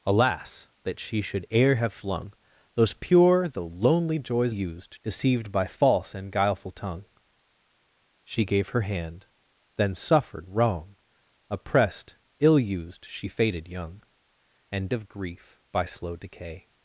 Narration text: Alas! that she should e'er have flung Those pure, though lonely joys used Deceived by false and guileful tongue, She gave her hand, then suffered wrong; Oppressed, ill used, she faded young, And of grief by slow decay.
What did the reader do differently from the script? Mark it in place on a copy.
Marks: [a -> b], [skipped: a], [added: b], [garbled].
Alas! that she should e'er have flung Those pure, though lonely joys used Deceived by false and guileful tongue, She gave her hand, then suffered wrong; Oppressed, ill used, she faded young, And of grief by slow decay.